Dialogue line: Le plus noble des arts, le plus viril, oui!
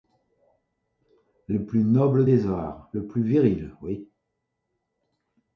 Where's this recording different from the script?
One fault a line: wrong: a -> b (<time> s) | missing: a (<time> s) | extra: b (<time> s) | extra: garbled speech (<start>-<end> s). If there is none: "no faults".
no faults